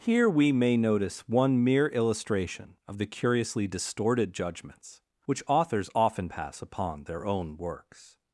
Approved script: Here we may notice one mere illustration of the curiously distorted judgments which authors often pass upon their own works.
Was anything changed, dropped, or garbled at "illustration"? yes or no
no